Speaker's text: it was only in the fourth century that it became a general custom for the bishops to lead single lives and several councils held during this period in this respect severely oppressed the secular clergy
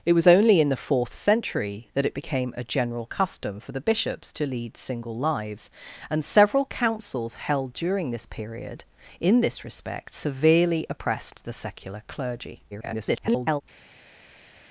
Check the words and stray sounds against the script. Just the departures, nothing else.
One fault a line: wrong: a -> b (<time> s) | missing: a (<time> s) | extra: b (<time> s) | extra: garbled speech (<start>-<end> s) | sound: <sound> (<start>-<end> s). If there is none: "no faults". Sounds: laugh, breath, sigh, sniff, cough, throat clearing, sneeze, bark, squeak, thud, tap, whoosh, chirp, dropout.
extra: garbled speech (12.7-13.6 s)